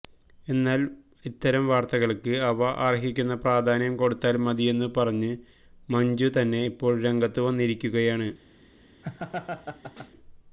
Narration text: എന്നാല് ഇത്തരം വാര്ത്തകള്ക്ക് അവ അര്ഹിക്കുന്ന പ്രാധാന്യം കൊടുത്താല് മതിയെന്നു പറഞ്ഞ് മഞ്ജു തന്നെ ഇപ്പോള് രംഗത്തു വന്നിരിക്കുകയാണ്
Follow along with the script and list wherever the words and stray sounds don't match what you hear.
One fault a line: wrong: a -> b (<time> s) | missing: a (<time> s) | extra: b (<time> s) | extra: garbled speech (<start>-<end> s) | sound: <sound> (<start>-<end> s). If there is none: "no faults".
sound: laugh (9.0-10.1 s)